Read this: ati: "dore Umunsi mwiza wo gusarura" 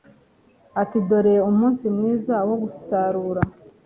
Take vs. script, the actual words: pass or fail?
pass